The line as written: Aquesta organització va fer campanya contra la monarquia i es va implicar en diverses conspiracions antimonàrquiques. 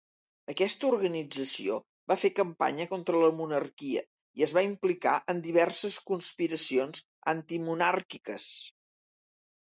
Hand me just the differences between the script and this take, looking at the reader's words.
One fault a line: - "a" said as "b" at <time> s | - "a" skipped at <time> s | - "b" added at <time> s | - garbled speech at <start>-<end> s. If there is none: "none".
none